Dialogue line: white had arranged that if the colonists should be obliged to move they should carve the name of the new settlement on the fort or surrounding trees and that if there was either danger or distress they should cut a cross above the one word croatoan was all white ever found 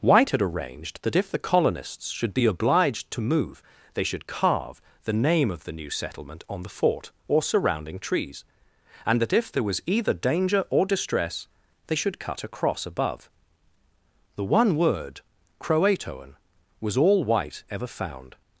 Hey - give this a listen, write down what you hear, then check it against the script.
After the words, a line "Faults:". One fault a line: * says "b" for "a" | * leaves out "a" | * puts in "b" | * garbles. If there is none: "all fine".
white had arranged that if the colonists should be obliged to move they should carve the name of the new settlement on the fort or surrounding trees and that if there was either danger or distress they should cut a cross above the one word croatoan was all white ever found
Faults:
all fine